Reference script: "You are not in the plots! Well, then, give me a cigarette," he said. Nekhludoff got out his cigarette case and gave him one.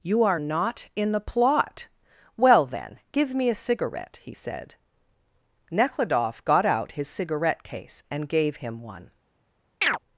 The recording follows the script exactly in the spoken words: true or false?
false